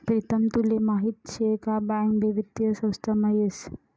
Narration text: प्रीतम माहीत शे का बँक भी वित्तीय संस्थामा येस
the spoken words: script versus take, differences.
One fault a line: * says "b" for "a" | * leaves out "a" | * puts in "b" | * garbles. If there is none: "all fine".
* puts in "तुले"